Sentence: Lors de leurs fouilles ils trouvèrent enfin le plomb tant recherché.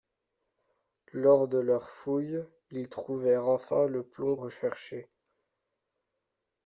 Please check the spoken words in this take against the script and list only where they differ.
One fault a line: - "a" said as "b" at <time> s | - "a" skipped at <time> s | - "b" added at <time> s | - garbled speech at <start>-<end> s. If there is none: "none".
- "tant" skipped at 4.3 s